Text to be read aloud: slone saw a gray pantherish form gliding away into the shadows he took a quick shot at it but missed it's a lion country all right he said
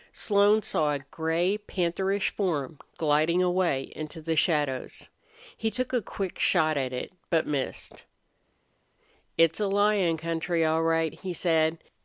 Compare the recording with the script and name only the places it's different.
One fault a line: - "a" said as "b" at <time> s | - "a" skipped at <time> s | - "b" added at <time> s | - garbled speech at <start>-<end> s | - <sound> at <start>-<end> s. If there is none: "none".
none